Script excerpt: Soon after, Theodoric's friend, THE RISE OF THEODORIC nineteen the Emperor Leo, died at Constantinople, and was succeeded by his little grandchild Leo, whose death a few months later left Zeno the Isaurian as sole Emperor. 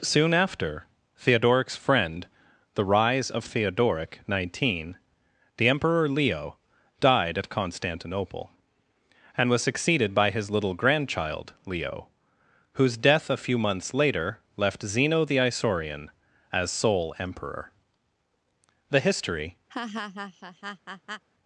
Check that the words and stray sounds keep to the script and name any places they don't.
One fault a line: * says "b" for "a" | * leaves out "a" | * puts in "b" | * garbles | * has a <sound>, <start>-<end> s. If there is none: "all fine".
* puts in "The history"
* has a laugh, 19.7-21.2 s